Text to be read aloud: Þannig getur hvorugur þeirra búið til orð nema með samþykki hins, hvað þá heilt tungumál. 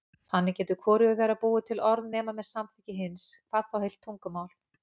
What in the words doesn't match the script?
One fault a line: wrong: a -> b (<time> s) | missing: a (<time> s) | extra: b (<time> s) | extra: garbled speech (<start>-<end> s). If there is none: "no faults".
no faults